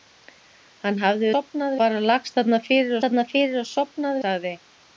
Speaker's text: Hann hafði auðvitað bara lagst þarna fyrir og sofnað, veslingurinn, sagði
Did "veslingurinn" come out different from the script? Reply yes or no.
yes